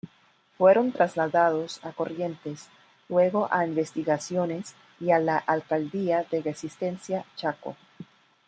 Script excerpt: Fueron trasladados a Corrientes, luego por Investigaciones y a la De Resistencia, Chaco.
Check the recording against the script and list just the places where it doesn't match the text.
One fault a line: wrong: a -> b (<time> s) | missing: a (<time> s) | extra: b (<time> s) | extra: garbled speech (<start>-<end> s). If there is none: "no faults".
wrong: por -> a (3.5 s)
extra: Alcaldía (5.4 s)